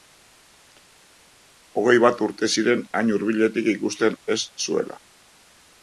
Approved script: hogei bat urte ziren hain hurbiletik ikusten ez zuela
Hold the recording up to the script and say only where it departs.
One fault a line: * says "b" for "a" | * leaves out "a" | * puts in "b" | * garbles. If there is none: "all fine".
all fine